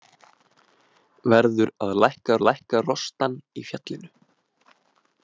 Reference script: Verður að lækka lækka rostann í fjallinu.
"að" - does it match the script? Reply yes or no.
yes